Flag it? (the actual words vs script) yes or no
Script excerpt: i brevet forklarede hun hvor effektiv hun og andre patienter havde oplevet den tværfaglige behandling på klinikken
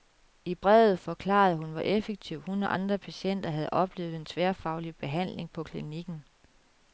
no